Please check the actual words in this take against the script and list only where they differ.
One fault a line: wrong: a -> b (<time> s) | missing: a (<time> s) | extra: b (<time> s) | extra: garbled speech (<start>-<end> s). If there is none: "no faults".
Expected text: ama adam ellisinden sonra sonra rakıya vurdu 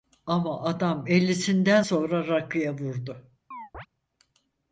missing: sonra (2.3 s)